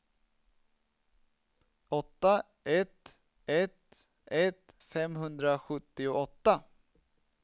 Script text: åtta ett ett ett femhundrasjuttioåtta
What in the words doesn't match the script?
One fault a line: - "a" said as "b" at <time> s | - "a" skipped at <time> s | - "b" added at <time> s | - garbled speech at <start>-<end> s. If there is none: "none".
none